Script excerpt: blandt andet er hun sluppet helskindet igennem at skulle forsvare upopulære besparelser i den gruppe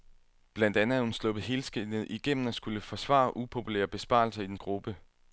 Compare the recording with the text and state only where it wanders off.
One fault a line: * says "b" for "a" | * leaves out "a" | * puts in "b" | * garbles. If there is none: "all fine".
all fine